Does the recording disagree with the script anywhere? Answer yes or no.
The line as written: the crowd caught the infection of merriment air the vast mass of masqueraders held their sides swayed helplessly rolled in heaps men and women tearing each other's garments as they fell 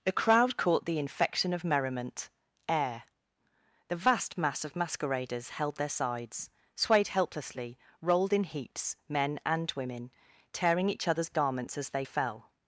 no